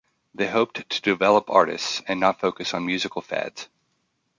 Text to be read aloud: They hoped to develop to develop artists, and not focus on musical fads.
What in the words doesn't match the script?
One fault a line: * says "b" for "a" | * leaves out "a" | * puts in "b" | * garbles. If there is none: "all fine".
* leaves out "to develop"